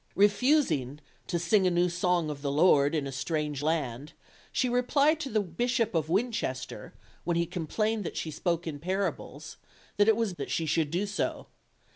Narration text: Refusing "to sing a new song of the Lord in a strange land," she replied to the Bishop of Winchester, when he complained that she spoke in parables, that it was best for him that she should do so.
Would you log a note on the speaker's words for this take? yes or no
yes